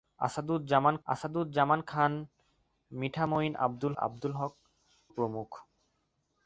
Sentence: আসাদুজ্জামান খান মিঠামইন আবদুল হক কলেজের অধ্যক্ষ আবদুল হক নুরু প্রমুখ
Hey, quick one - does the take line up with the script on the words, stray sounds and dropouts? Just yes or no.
no